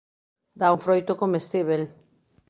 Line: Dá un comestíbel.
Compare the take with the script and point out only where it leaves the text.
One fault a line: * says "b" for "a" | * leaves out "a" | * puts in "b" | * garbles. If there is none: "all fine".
* puts in "froito"